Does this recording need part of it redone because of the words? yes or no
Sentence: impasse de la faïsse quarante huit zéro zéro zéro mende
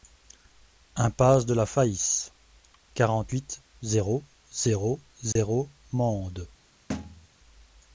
no